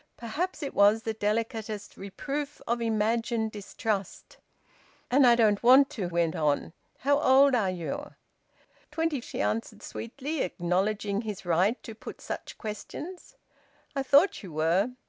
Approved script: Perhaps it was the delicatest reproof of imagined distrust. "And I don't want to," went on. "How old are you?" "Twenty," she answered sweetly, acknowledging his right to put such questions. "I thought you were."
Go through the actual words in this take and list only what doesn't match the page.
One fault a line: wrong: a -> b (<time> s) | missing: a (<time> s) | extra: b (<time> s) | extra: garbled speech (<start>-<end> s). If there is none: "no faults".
no faults